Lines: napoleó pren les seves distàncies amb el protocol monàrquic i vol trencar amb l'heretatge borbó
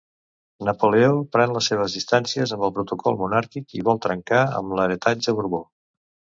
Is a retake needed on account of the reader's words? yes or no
no